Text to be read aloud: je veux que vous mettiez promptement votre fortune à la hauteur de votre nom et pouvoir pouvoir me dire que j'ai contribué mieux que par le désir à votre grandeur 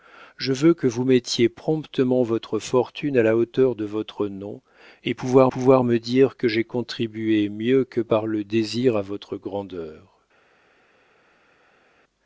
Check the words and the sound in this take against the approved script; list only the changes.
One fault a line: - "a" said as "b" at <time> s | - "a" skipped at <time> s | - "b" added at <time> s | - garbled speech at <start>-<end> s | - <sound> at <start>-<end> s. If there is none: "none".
none